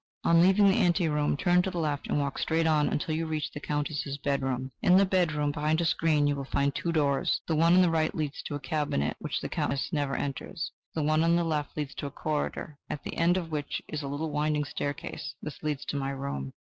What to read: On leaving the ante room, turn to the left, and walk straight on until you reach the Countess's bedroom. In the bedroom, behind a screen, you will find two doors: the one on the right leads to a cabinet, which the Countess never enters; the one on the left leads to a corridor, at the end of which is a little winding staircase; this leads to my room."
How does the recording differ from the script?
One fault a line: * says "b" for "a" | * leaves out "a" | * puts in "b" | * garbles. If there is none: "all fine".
all fine